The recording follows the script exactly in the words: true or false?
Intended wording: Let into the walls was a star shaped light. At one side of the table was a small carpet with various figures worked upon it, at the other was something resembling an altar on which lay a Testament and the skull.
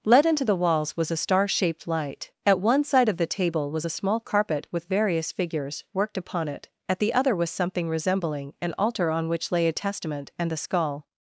true